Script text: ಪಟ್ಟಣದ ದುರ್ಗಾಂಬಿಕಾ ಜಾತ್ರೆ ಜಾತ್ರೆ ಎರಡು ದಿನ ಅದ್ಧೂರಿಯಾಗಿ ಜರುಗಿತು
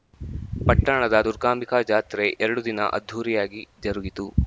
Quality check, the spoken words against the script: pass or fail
fail